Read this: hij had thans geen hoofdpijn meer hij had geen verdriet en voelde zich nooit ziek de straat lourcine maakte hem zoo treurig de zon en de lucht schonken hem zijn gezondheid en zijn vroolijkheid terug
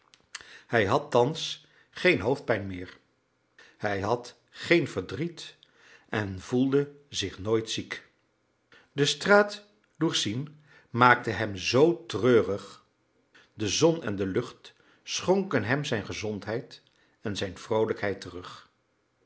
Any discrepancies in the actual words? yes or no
no